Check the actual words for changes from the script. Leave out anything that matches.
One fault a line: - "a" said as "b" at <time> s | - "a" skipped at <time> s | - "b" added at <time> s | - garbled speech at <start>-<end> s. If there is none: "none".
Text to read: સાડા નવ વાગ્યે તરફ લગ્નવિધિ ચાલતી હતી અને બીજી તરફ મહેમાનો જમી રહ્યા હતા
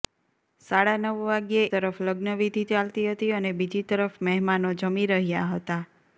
none